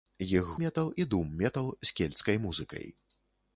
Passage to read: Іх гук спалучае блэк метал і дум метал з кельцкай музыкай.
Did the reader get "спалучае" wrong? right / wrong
wrong